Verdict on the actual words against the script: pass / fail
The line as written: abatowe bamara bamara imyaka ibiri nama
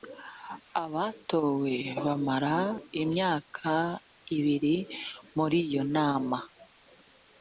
fail